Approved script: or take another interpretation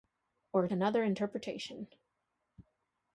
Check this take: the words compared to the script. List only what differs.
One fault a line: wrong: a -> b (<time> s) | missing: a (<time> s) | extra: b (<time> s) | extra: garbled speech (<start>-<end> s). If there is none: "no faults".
missing: take (0.7 s)